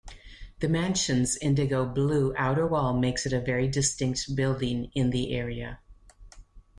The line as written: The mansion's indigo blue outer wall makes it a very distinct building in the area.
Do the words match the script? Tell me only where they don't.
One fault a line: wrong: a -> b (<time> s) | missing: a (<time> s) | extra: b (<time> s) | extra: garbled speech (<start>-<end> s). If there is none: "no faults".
no faults